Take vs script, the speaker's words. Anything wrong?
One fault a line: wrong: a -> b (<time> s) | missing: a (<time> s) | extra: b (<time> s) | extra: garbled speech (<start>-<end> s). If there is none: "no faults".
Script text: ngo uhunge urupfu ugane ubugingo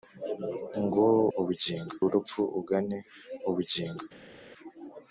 wrong: uhunge -> ubugingo (1.4 s)